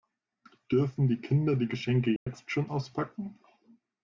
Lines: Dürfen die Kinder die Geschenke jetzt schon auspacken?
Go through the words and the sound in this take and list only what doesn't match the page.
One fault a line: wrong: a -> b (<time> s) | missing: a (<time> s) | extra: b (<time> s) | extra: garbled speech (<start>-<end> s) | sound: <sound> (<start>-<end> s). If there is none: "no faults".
sound: dropout (2.2-2.3 s)